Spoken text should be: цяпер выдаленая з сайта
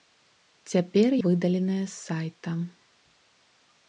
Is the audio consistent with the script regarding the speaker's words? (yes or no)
yes